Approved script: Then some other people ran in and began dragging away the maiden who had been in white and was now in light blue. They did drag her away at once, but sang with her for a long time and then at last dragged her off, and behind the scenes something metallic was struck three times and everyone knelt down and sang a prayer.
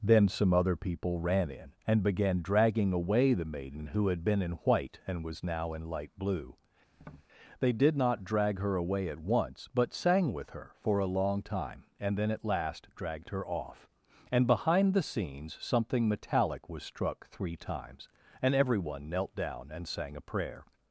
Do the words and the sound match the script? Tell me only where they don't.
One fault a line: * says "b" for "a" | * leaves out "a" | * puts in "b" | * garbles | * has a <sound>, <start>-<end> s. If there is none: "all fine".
* has a tap, 6.9-7.3 s
* puts in "not"